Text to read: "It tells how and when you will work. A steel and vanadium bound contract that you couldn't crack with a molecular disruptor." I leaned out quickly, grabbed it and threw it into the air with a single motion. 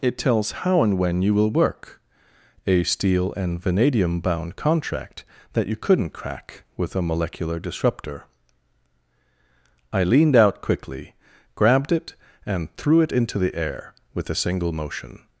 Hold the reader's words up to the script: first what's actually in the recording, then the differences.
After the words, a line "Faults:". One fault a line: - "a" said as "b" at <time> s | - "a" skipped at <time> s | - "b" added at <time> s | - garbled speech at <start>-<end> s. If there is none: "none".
"It tells how and when you will work. A steel and vanadium bound contract that you couldn't crack with a molecular disruptor." I leaned out quickly, grabbed it and threw it into the air with a single motion.
Faults:
none